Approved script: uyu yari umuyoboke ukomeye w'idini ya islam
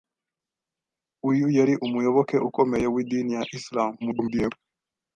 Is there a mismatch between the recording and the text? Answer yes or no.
yes